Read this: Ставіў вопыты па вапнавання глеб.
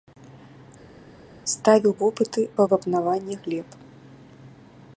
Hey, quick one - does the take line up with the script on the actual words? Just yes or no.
yes